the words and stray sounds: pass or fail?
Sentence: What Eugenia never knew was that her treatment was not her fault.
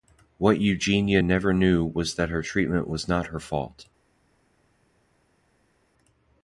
pass